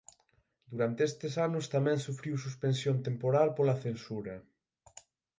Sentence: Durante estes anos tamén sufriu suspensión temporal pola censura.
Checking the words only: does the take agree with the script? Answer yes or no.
yes